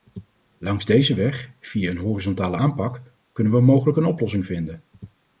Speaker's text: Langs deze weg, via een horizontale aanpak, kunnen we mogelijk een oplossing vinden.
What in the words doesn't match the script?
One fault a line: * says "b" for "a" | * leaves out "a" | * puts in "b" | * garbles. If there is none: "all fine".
all fine